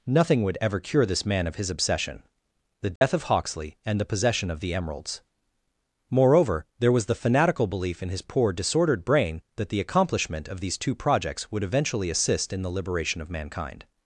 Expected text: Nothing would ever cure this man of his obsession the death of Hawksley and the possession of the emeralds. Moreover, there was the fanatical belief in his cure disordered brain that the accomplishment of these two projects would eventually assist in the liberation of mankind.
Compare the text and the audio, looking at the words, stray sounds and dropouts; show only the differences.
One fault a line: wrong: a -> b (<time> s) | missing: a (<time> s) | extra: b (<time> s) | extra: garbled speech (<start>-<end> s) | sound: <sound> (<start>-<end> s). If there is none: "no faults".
sound: dropout (3.0-3.0 s)
wrong: cure -> poor (8.2 s)